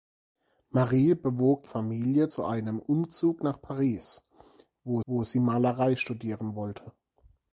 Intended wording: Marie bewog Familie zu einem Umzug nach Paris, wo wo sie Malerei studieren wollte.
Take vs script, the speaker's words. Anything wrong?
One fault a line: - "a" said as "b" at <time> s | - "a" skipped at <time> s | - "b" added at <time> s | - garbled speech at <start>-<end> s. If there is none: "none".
none